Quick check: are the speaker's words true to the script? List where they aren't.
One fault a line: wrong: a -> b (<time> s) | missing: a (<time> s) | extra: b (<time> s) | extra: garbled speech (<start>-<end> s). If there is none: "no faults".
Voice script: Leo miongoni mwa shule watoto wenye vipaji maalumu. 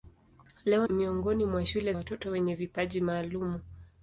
no faults